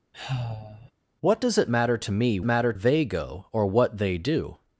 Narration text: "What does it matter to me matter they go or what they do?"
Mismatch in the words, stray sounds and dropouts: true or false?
true